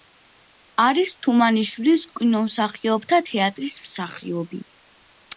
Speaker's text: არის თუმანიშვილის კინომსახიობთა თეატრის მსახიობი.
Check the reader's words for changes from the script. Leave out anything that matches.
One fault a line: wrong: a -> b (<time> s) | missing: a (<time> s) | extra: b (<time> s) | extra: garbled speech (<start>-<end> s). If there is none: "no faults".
no faults